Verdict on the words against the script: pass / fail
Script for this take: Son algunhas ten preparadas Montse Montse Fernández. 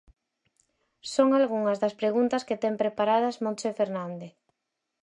fail